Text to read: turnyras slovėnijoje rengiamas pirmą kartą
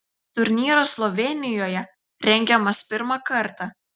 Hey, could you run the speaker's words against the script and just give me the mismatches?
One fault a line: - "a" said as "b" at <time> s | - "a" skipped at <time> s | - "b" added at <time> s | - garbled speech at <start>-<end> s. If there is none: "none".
none